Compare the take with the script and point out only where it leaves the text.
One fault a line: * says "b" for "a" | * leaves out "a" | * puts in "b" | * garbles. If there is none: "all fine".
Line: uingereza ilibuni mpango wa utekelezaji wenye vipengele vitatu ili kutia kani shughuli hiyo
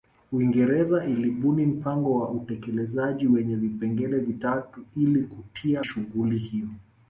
* leaves out "kani"